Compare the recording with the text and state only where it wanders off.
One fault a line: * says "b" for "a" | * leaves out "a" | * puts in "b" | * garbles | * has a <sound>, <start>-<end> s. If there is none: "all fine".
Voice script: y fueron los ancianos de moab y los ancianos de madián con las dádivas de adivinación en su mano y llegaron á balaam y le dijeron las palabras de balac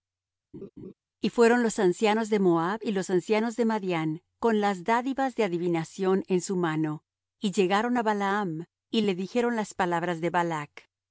* has a laugh, 0.5-0.9 s